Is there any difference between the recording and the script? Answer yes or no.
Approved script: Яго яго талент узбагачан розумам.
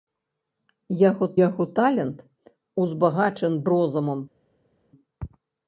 no